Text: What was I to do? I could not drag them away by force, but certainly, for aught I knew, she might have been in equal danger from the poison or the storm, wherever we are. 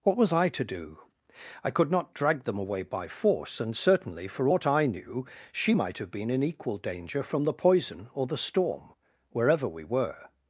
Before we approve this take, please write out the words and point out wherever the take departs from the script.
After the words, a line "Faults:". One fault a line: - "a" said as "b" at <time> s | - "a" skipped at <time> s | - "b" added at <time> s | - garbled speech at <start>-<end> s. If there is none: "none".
What was I to do? I could not drag them away by force, and certainly, for aught I knew, she might have been in equal danger from the poison or the storm, wherever we were.
Faults:
- "but" said as "and" at 3.6 s
- "are" said as "were" at 9.8 s